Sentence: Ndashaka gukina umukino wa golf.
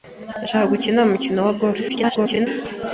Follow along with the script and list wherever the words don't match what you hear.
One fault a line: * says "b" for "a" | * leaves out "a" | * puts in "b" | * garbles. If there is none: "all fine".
* garbles